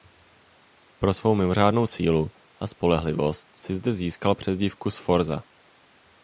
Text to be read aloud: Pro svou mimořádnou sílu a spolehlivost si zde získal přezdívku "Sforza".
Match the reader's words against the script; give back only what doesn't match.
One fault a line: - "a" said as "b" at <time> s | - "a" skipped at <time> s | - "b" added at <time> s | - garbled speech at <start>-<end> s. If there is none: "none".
none